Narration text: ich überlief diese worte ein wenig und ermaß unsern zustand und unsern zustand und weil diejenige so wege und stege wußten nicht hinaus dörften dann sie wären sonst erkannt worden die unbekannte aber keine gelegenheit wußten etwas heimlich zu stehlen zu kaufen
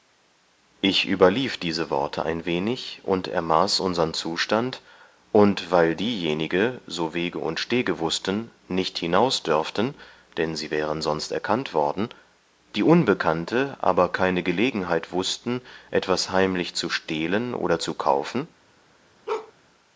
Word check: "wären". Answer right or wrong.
right